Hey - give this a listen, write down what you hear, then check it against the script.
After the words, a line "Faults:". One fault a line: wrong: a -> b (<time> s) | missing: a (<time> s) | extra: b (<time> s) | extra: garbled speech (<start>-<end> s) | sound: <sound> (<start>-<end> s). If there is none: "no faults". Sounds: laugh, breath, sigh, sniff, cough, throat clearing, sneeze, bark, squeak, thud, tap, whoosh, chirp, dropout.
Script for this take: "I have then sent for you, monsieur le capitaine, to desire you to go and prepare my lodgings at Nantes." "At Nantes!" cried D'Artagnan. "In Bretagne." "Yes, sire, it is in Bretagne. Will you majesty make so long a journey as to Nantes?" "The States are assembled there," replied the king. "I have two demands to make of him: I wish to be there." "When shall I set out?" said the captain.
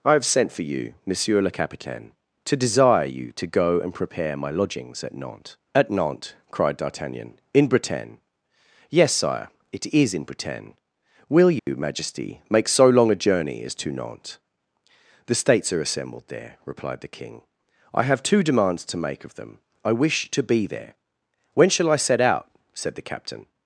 "I have sent for you, monsieur le capitaine, to desire you to go and prepare my lodgings at Nantes." "At Nantes!" cried D'Artagnan. "In Bretagne." "Yes, sire, it is in Bretagne. Will you majesty make so long a journey as to Nantes?" "The States are assembled there," replied the king. "I have two demands to make of them: I wish to be there." "When shall I set out?" said the captain.
Faults:
missing: then (0.2 s)
sound: dropout (11.6-11.7 s)
wrong: him -> them (19.4 s)